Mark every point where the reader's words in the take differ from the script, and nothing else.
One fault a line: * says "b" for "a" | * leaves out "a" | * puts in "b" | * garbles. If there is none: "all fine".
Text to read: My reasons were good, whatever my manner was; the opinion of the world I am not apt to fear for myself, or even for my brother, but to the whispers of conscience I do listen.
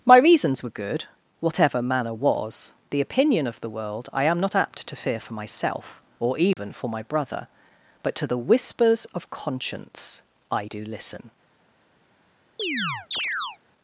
* leaves out "my"